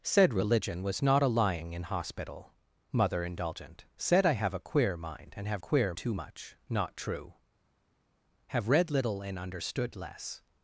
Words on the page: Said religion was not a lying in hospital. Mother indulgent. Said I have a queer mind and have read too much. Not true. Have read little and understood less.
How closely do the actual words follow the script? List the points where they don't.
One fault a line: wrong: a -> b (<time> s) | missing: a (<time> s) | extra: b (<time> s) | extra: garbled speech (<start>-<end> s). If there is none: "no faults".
wrong: read -> queer (5.6 s)